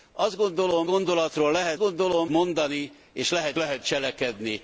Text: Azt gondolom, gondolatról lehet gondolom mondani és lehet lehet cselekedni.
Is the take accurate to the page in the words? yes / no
yes